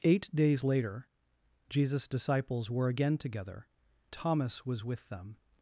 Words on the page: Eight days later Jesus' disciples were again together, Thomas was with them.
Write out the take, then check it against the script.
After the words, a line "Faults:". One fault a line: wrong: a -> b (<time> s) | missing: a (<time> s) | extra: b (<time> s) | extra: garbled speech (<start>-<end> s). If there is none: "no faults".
Eight days later Jesus' disciples were again together, Thomas was with them.
Faults:
no faults